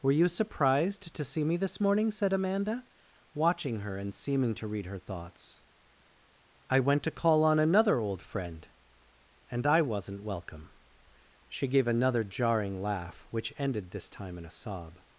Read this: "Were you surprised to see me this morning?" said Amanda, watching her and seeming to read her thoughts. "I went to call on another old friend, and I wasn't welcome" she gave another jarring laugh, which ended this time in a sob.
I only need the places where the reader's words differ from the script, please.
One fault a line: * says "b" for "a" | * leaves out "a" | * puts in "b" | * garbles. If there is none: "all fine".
all fine